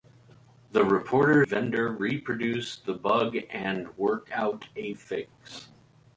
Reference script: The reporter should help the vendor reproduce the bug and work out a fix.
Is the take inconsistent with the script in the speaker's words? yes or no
yes